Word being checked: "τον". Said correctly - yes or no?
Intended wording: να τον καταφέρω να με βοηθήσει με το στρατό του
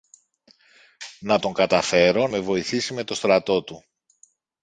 yes